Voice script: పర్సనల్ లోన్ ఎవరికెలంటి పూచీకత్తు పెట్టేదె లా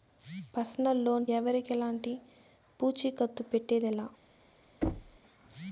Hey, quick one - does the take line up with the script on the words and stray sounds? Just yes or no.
no